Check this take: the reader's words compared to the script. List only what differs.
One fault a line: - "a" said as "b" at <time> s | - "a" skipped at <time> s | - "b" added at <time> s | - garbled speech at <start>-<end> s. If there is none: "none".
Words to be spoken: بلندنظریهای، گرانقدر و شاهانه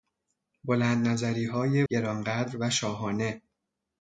none